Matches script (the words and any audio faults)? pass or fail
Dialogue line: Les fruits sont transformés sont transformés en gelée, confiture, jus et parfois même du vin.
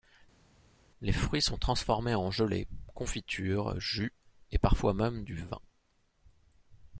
fail